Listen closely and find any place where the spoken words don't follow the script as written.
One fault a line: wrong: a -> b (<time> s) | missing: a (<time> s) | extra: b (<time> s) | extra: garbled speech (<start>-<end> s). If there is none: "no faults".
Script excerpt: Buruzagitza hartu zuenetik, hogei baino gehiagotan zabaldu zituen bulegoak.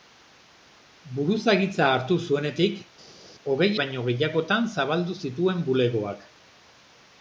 no faults